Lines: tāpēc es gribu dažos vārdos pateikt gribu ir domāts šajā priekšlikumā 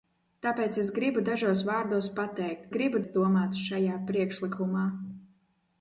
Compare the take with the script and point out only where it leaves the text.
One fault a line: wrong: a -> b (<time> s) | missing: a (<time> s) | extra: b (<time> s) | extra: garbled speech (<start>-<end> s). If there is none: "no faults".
no faults